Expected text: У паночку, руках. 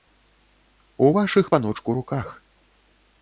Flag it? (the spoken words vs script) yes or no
yes